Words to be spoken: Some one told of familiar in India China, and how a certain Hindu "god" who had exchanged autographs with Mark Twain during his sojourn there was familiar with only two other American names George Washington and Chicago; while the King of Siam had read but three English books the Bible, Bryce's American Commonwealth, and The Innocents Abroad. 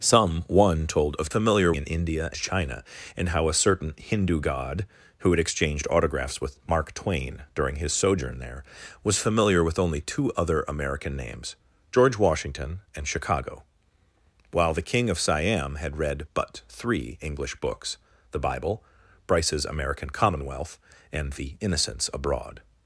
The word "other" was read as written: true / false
true